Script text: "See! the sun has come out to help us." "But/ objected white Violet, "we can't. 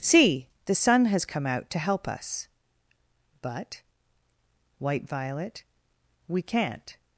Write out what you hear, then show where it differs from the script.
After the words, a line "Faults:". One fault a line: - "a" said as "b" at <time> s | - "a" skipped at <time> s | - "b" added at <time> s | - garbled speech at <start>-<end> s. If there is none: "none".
"See! the sun has come out to help us." "But/ white Violet, "we can't.
Faults:
- "objected" skipped at 3.8 s